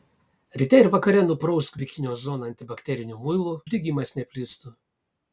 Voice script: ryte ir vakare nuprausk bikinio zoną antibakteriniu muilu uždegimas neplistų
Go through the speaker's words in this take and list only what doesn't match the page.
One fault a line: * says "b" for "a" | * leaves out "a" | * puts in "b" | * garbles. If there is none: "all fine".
all fine